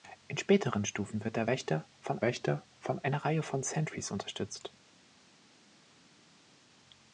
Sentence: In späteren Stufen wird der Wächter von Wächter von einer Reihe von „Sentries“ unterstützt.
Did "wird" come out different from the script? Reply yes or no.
no